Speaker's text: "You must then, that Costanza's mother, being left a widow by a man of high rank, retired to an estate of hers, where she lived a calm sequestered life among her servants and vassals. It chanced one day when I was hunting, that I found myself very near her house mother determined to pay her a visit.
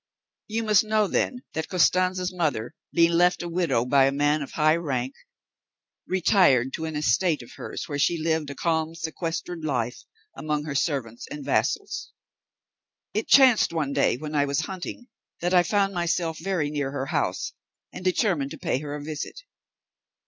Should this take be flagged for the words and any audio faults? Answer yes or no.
yes